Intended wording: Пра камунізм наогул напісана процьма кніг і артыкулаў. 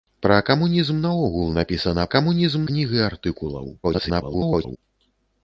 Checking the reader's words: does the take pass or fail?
fail